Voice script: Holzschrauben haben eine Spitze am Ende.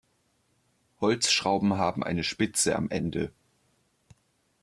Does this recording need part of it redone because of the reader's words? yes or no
no